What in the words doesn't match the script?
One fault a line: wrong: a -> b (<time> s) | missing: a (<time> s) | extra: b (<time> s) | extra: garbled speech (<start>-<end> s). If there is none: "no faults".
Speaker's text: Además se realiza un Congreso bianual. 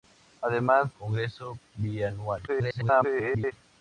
missing: se realiza un (0.9 s)
extra: garbled speech (2.5-3.5 s)